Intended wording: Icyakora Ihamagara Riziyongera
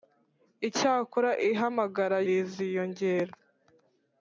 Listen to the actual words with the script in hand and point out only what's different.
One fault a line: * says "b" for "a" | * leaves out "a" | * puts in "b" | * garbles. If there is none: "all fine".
all fine